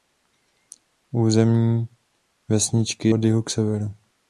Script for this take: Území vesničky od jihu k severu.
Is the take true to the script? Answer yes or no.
yes